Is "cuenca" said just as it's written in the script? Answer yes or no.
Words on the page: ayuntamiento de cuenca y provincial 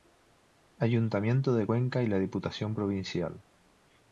yes